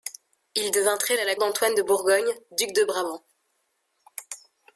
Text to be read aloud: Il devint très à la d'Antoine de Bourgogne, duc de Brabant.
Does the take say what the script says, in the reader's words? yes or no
yes